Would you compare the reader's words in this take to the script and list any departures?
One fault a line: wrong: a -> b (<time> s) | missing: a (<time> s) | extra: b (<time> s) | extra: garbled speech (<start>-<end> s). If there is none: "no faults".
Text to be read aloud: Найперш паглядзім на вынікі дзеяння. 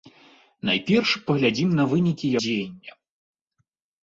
no faults